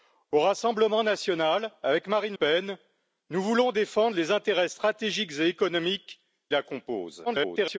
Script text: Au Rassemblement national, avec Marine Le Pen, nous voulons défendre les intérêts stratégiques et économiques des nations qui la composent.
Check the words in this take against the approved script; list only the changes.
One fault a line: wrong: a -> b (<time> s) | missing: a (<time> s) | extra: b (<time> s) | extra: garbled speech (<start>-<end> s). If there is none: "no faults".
missing: Le (2.4 s)
missing: des nations qui (6.2 s)
extra: garbled speech (7.3-7.8 s)